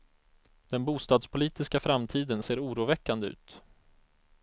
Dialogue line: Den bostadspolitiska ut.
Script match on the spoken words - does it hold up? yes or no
no